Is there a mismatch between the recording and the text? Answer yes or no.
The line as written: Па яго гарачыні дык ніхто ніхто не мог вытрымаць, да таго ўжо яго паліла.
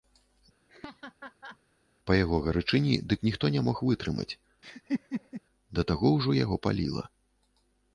yes